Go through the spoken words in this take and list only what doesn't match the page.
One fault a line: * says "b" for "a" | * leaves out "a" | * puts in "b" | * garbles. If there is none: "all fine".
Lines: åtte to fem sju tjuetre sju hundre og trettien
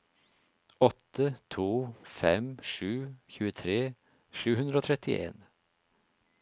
all fine